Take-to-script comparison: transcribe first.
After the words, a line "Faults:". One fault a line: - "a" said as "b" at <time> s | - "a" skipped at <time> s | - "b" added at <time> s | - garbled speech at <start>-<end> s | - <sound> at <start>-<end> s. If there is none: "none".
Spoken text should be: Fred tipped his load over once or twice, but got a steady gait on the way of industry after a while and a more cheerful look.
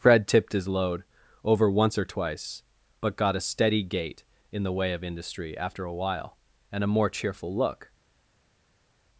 Fred tipped his load over once or twice, but got a steady gait in the way of industry after a while and a more cheerful look.
Faults:
- "on" said as "in" at 4.5 s